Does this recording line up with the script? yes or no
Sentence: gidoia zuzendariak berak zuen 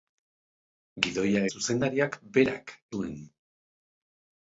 yes